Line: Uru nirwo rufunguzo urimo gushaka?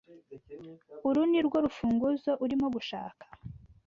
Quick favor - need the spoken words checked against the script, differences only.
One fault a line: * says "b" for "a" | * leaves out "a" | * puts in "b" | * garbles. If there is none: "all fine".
all fine